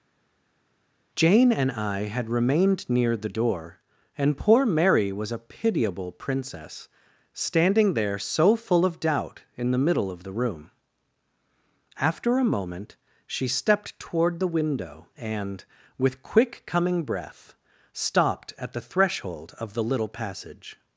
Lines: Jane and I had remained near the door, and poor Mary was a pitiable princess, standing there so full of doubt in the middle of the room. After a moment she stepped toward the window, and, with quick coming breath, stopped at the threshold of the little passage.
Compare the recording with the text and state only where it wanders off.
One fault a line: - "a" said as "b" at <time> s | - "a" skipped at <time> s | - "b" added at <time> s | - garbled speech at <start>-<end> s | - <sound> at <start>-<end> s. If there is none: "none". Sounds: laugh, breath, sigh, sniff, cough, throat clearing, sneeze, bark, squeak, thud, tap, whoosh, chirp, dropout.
none